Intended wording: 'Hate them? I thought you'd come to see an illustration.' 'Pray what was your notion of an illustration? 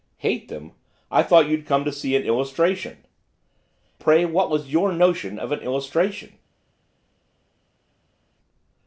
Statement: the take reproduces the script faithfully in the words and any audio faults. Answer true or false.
true